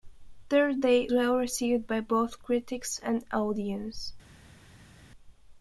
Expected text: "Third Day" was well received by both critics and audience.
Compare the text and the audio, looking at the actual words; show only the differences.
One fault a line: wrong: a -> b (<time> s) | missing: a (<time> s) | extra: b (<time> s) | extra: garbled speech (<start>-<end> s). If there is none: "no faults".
missing: was (1.1 s)